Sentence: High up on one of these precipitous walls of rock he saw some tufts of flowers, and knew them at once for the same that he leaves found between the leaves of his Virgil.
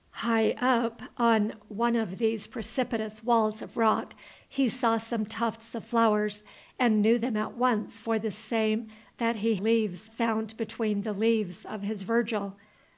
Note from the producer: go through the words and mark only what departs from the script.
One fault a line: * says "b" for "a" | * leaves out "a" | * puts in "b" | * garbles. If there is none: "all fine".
all fine